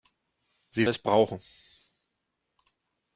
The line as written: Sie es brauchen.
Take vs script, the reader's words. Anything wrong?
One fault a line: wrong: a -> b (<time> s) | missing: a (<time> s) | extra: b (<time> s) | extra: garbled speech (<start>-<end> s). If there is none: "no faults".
no faults